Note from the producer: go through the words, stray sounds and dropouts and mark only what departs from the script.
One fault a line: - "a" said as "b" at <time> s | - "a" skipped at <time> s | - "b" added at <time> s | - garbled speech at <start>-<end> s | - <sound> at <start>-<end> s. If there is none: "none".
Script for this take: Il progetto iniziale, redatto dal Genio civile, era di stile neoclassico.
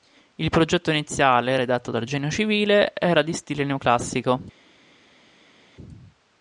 none